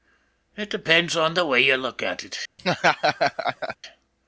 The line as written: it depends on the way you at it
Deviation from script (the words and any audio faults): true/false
true